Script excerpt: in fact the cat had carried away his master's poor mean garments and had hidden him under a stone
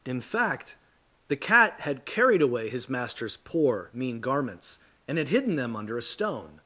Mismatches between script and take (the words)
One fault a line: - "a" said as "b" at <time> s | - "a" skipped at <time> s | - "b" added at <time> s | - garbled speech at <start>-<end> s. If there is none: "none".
- "him" said as "them" at 5.5 s